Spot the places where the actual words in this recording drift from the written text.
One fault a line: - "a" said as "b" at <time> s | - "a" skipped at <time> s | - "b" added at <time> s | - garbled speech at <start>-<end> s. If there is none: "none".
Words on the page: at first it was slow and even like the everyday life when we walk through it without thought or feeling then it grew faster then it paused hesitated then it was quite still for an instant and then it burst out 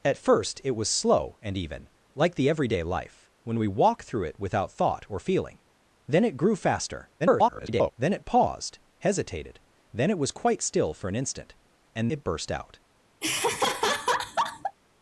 - garbled speech at 7.2-7.9 s
- "then" skipped at 12.1 s